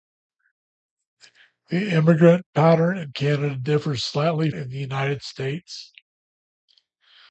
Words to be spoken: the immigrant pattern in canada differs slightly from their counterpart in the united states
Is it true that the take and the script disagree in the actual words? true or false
true